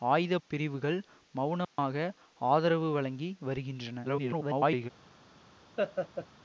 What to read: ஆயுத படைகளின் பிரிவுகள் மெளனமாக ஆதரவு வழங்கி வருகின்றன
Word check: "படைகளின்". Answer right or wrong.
wrong